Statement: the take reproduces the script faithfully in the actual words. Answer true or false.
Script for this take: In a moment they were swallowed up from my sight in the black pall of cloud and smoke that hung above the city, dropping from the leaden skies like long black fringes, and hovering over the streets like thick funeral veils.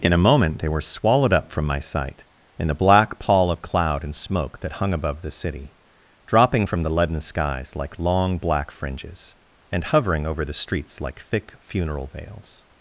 true